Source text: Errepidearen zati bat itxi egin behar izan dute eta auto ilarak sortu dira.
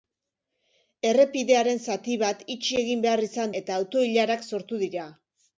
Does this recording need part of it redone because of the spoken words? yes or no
yes